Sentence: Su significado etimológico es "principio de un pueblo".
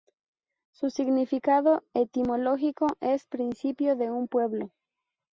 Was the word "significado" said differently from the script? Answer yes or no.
no